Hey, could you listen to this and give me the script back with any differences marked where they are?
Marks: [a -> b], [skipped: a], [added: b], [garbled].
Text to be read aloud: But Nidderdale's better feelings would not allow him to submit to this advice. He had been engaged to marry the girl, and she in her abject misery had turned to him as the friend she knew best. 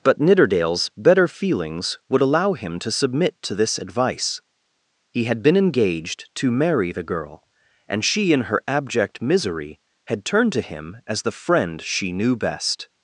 But Nidderdale's better feelings would [skipped: not] allow him to submit to this advice. He had been engaged to marry the girl, and she in her abject misery had turned to him as the friend she knew best.